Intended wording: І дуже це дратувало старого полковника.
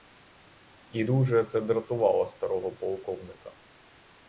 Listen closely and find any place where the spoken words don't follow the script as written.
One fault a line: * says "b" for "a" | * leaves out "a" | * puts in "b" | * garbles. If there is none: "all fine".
all fine